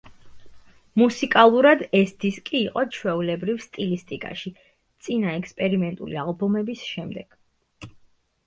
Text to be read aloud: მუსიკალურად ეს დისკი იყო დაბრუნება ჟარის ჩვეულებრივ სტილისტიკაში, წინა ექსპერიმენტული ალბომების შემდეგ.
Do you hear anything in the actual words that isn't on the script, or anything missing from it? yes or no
yes